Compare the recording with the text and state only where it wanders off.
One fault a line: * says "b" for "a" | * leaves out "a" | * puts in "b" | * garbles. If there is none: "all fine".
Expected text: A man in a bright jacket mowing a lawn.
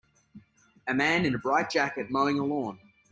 all fine